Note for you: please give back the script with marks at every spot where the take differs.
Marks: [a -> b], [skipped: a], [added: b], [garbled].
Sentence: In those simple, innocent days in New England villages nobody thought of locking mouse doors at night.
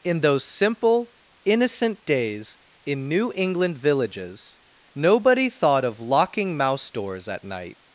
In those simple, innocent days in New England villages nobody thought of locking mouse doors at night.